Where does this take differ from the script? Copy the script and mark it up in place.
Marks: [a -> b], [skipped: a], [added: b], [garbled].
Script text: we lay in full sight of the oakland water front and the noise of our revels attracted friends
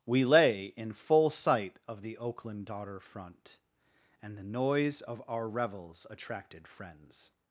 we lay in full sight of the oakland [water -> daughter] front and the noise of our revels attracted friends